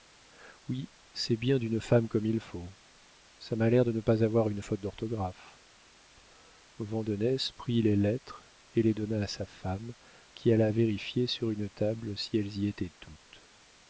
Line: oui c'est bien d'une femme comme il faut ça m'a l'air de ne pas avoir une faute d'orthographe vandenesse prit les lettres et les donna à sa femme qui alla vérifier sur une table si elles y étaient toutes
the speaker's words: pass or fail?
pass